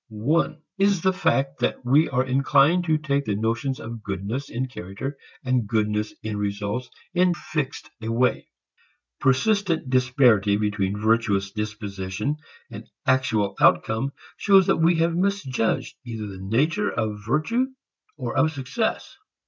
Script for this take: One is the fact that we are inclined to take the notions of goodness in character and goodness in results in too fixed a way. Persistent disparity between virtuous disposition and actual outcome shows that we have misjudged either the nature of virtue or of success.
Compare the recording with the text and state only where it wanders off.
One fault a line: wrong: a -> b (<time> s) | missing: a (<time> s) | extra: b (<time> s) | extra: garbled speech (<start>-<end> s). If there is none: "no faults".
missing: too (7.3 s)